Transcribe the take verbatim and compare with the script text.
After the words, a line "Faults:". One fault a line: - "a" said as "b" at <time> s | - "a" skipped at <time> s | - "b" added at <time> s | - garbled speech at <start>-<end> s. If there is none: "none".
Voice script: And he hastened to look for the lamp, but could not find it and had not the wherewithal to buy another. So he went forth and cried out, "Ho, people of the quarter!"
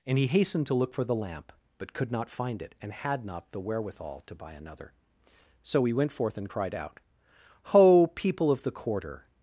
And he hastened to look for the lamp, but could not find it and had not the wherewithal to buy another. So he went forth and cried out, "Ho, people of the quarter!"
Faults:
none